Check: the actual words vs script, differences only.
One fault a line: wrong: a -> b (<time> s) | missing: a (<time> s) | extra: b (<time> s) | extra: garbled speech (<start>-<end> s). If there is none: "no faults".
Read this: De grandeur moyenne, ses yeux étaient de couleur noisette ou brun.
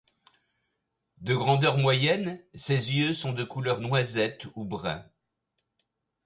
wrong: étaient -> sont (3.1 s)